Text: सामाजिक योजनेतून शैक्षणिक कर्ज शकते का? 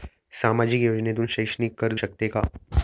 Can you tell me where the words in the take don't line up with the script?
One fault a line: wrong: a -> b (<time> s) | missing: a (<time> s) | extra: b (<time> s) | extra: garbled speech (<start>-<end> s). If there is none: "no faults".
no faults